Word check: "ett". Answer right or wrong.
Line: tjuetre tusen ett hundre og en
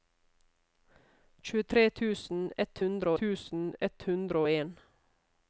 right